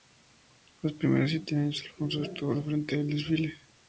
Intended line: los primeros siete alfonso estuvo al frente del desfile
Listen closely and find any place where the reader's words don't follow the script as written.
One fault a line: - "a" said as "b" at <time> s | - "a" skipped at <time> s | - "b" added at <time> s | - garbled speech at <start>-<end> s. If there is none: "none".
- "años" added at 1.6 s